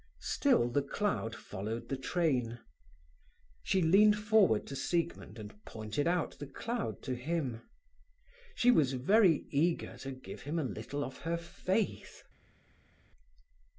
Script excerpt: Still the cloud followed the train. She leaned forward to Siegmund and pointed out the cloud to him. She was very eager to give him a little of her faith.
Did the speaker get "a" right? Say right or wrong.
right